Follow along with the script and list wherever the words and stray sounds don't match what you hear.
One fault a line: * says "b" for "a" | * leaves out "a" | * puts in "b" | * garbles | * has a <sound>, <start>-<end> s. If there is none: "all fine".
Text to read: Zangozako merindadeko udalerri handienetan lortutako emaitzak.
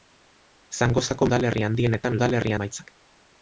* leaves out "merindadeko"
* says "udalerri" for "lortutako"